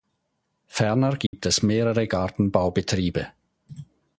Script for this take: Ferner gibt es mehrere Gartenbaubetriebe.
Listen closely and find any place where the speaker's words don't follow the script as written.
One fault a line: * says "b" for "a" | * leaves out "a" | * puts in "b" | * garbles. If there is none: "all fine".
all fine